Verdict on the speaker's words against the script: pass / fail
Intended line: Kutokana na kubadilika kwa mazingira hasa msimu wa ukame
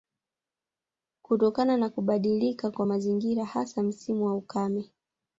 pass